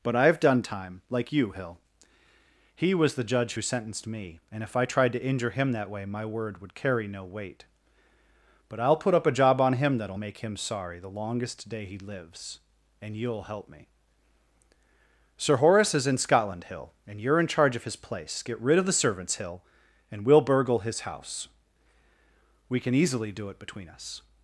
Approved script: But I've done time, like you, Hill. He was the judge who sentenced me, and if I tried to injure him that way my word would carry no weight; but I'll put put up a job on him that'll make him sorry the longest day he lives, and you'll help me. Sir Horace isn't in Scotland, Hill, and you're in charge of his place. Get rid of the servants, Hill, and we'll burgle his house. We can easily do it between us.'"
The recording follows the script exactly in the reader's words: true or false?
false